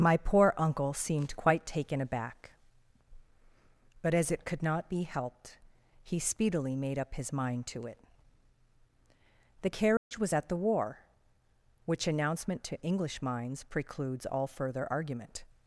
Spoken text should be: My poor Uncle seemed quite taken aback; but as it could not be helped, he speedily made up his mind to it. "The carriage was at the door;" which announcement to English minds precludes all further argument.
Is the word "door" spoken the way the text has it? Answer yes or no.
no